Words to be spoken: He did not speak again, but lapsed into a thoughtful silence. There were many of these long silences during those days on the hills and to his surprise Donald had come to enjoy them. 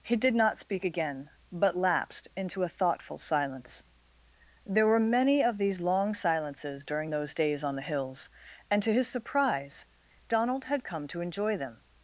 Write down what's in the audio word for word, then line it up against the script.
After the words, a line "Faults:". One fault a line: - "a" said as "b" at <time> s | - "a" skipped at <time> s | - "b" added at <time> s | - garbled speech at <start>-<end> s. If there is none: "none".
He did not speak again, but lapsed into a thoughtful silence. There were many of these long silences during those days on the hills and to his surprise Donald had come to enjoy them.
Faults:
none